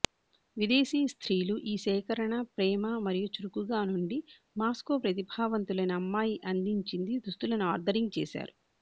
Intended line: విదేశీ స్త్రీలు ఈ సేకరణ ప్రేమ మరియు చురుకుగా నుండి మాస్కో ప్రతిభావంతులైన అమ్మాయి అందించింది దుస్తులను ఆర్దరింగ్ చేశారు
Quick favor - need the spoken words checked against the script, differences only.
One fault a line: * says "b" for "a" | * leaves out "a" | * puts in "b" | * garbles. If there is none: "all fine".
all fine